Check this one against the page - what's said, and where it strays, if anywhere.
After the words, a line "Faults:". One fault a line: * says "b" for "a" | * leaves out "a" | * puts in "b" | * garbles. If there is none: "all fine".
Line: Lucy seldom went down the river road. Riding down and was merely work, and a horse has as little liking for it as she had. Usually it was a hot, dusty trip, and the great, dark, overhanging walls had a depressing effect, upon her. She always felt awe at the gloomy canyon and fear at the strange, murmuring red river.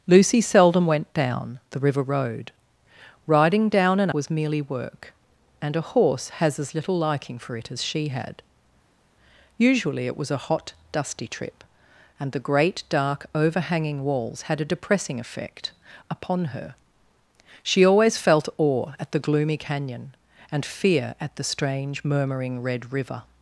Lucy seldom went down the river road. Riding down and was merely work, and a horse has as little liking for it as she had. Usually it was a hot, dusty trip, and the great, dark, overhanging walls had a depressing effect, upon her. She always felt awe at the gloomy canyon and fear at the strange, murmuring red river.
Faults:
all fine